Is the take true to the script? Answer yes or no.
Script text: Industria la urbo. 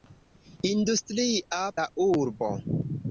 yes